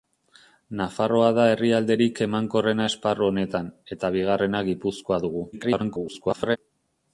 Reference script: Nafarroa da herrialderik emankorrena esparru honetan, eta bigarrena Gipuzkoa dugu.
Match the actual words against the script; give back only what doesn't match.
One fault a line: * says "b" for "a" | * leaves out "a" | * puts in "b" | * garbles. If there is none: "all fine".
* garbles